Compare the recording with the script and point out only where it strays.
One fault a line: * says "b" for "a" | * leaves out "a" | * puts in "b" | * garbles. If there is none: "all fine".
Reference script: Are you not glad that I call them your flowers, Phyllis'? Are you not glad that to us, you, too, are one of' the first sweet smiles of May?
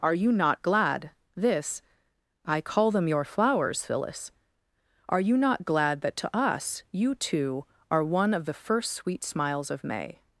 * says "this" for "that"